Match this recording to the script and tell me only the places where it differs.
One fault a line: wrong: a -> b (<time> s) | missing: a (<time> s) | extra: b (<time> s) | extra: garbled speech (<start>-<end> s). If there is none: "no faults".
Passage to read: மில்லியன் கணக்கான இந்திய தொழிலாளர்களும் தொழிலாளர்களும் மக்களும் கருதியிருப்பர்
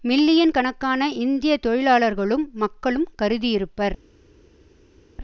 missing: தொழிலாளர்களும் (2.5 s)